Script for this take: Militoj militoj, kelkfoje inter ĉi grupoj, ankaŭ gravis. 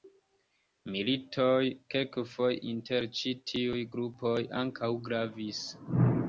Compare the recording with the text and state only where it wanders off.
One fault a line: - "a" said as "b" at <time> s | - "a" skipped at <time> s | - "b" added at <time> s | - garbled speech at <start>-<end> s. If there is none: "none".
- "militoj" skipped at 1.6 s
- "tiuj" added at 3.5 s